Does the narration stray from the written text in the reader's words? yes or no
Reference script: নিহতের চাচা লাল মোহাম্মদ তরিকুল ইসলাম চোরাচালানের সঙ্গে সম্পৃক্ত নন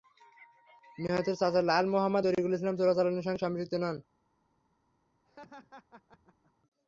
no